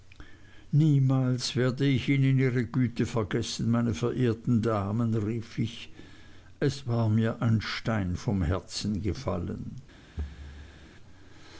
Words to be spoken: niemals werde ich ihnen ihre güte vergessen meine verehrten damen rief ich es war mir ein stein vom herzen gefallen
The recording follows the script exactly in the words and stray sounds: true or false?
false